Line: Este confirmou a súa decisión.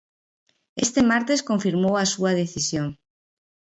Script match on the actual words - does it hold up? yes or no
no